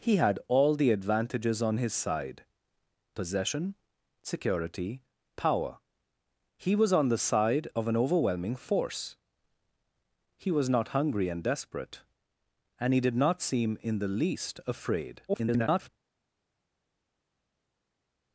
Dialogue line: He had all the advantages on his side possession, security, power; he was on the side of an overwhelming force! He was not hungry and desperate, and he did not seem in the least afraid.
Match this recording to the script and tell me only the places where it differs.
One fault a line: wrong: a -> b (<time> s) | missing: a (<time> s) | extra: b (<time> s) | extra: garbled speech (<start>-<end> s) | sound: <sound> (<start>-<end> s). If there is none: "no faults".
extra: garbled speech (15.3-15.9 s)